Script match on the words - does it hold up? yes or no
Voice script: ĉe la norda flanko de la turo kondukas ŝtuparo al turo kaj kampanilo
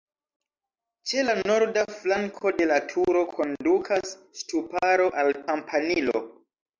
no